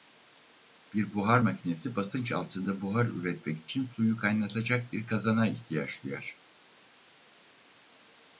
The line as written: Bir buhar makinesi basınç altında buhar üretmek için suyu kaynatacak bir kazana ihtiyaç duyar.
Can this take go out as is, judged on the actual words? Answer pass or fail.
pass